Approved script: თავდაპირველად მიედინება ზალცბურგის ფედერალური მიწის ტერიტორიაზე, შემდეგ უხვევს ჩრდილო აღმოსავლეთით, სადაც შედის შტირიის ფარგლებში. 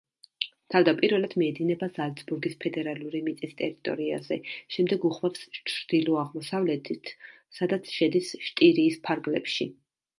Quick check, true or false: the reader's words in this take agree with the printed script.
true